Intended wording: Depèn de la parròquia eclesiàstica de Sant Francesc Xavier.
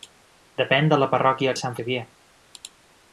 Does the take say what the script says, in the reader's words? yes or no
no